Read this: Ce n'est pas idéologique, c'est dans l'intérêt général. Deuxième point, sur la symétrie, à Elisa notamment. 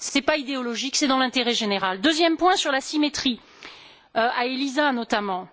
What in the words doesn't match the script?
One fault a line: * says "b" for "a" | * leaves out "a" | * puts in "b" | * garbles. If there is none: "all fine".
* puts in "ce"